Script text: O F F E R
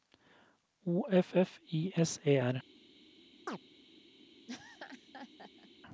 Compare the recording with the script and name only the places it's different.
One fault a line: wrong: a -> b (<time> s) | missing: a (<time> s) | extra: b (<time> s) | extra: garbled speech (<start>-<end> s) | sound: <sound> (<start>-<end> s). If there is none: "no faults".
extra: I S (1.7 s)
sound: chirp (3.5-3.6 s)
sound: laugh (4.5-5.7 s)